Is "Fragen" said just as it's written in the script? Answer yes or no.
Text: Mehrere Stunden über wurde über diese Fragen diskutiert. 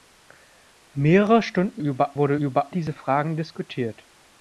yes